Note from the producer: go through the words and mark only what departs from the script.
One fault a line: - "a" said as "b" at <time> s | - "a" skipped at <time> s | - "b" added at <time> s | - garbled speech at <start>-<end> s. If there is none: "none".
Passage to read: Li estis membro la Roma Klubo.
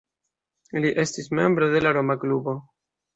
- "de" added at 1.7 s